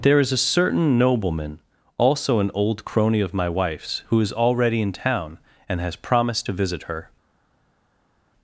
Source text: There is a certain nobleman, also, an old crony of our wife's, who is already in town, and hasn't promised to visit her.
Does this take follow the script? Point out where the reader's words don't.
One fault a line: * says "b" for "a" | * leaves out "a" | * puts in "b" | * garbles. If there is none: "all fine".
* says "my" for "our"
* says "has" for "hasn't"